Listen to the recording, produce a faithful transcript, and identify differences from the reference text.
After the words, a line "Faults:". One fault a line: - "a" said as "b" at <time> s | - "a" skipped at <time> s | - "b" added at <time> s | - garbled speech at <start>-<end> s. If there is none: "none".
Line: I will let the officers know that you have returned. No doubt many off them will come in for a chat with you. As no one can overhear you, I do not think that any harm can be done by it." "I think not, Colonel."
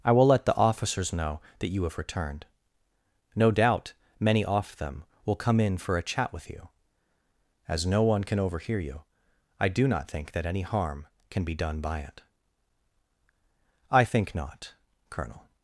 I will let the officers know that you have returned. No doubt many off them will come in for a chat with you. As no one can overhear you, I do not think that any harm can be done by it." "I think not, Colonel."
Faults:
none